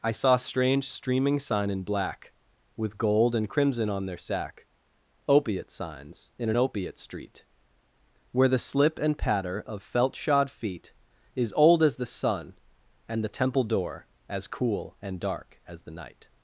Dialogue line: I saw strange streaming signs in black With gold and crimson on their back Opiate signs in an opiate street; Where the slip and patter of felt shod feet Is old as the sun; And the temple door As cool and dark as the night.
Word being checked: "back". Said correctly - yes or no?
no